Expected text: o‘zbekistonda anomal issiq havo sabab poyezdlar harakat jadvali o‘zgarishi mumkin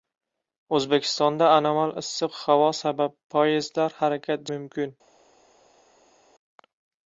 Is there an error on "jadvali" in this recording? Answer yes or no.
yes